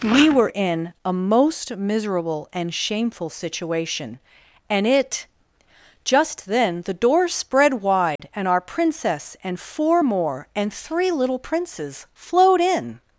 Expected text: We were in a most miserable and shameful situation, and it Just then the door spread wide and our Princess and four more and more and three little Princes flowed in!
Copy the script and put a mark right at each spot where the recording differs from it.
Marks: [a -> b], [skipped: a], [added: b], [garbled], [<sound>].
We were in a most miserable and shameful situation, and it Just then the door spread wide [dropout] and our Princess and four more and [skipped: more and] three little Princes flowed in!